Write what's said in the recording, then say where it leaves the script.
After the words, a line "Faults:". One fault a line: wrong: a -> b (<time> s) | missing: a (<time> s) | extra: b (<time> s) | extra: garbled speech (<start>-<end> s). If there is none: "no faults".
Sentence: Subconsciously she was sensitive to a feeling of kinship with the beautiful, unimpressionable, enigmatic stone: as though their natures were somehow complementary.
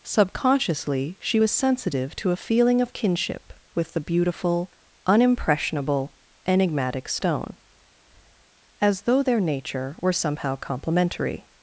Subconsciously she was sensitive to a feeling of kinship with the beautiful, unimpressionable, enigmatic stone: as though their nature were somehow complementary.
Faults:
wrong: natures -> nature (9.4 s)